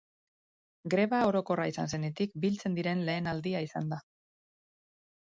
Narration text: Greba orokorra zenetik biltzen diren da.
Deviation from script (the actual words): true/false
true